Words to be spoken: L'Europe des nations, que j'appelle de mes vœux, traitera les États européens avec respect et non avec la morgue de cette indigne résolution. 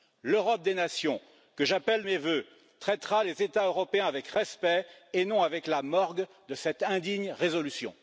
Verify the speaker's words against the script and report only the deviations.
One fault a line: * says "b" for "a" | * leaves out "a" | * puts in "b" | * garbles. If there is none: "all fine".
* leaves out "de"